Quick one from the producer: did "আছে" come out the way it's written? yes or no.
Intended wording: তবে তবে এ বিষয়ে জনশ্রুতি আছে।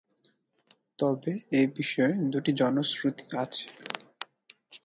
yes